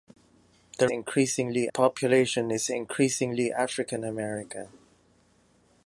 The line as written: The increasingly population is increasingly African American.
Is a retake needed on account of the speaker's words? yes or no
no